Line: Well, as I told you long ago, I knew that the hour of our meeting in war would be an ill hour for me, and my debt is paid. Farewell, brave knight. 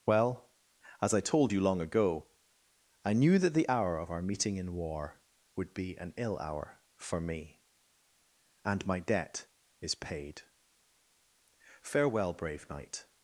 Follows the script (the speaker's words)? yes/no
yes